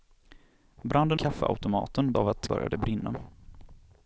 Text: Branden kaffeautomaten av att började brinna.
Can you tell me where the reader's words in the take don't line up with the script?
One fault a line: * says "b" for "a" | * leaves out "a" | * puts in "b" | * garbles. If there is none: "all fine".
all fine